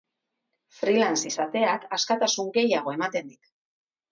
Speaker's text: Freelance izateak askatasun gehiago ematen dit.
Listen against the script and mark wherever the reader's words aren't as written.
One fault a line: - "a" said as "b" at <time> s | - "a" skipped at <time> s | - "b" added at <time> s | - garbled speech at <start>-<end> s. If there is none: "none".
none